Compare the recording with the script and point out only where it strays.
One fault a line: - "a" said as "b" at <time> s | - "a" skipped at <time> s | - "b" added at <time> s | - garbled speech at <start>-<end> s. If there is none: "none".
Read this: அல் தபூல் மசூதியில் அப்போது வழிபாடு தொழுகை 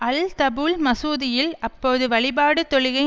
none